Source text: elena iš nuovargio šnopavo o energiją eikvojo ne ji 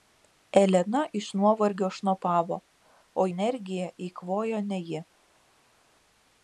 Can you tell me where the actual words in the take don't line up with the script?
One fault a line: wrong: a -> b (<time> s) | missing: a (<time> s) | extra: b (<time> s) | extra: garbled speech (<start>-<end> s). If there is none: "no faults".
no faults